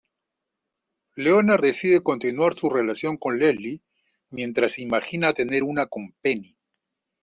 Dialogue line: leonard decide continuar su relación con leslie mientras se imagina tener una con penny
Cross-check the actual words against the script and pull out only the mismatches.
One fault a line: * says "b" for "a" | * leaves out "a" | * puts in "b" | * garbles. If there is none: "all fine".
all fine